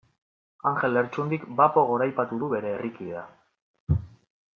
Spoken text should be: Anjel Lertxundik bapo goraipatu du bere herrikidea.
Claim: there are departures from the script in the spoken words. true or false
false